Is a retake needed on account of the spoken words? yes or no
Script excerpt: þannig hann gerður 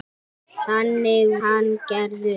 no